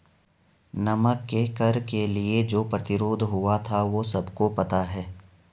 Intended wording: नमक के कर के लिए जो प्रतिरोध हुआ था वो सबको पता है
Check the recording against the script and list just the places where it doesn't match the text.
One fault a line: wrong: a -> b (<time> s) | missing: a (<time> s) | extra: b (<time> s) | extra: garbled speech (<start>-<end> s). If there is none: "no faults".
no faults